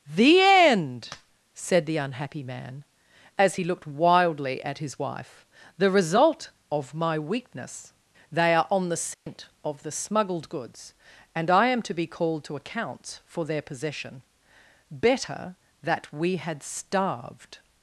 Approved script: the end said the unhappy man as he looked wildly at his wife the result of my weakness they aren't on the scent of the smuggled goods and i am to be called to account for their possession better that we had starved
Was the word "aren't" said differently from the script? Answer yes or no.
yes